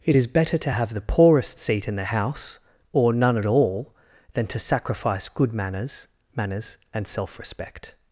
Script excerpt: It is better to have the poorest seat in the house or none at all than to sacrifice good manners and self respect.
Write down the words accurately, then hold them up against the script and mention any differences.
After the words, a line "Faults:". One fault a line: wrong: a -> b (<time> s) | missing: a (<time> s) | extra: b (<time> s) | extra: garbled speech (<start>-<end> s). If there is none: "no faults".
It is better to have the poorest seat in the house or none at all than to sacrifice good manners manners and self respect.
Faults:
extra: manners (6.4 s)